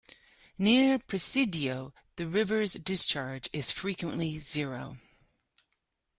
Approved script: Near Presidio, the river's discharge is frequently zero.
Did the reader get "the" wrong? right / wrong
right